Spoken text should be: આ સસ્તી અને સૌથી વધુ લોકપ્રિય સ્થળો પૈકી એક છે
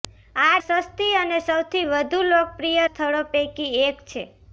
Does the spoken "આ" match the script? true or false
true